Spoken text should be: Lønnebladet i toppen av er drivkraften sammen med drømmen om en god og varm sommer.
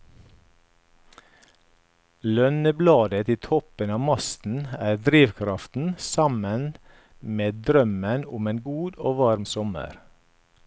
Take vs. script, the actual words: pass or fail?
fail